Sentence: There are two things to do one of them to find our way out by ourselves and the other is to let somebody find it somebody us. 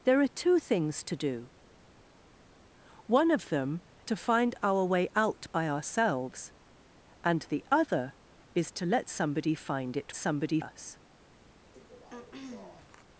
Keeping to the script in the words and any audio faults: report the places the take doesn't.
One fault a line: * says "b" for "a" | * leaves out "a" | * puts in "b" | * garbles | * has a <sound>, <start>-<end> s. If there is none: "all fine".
* has a throat clearing, 11.7-13.0 s